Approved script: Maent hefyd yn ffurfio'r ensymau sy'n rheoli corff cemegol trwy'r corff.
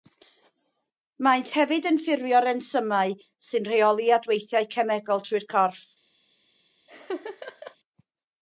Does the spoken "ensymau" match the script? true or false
true